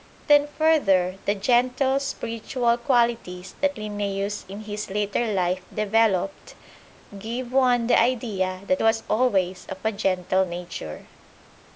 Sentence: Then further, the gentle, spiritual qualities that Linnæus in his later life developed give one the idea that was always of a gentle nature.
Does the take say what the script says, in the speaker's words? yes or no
yes